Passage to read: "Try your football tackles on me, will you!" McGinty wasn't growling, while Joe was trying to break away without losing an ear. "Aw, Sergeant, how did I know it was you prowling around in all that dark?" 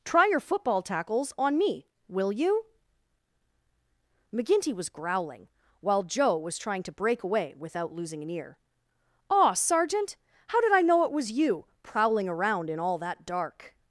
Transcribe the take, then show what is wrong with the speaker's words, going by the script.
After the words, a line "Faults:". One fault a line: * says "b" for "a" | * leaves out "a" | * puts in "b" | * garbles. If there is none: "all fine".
"Try your football tackles on me, will you!" McGinty was growling, while Joe was trying to break away without losing an ear. "Aw, Sergeant, how did I know it was you prowling around in all that dark?"
Faults:
* says "was" for "wasn't"